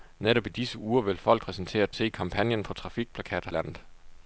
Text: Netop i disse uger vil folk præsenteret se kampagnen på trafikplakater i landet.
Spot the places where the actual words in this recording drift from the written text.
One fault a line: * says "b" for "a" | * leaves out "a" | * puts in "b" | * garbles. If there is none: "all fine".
all fine